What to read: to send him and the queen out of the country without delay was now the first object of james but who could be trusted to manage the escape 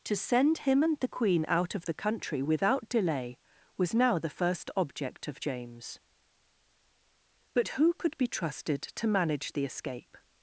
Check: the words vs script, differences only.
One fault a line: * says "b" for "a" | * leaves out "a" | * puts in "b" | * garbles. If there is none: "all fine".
all fine